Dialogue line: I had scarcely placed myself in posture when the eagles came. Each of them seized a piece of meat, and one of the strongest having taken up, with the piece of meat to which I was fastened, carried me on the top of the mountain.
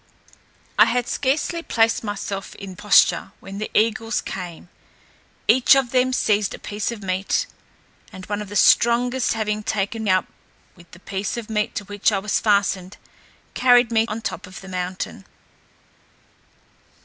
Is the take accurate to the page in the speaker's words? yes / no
yes